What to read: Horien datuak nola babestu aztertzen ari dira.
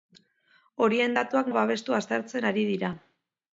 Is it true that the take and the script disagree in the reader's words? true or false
true